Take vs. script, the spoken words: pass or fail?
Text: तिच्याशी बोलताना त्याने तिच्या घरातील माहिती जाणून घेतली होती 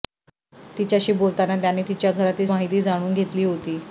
pass